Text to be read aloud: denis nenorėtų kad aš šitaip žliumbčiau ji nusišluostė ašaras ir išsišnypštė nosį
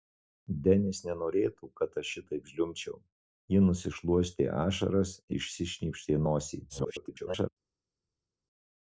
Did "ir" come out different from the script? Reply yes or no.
yes